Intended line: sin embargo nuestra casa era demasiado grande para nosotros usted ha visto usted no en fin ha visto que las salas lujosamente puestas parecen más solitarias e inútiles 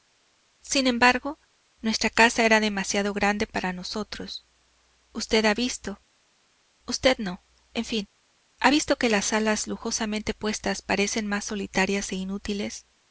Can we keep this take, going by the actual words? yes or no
yes